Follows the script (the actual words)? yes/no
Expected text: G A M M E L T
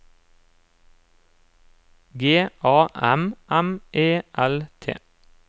yes